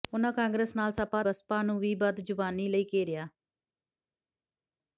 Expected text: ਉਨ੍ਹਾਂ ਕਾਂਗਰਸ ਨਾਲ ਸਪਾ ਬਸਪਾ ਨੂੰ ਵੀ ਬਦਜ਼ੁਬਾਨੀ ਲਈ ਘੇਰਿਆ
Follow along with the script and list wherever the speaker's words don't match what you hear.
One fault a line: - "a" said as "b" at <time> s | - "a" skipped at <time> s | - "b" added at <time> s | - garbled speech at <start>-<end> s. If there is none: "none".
none